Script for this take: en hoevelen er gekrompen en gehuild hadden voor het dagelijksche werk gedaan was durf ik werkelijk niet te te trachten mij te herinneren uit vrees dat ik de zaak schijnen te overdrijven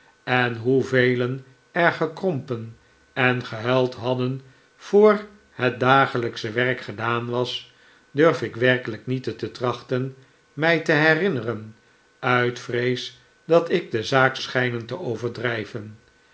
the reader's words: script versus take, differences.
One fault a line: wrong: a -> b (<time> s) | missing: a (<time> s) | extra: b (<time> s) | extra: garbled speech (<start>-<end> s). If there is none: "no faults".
no faults